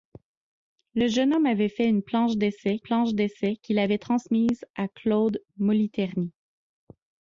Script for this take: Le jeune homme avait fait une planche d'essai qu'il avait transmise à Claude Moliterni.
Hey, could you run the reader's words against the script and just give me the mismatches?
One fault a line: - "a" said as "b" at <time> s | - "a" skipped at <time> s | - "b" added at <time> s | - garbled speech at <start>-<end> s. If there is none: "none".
- "planche d'essai" added at 2.8 s